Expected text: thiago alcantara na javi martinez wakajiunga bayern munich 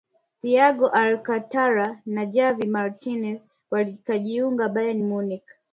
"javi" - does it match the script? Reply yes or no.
yes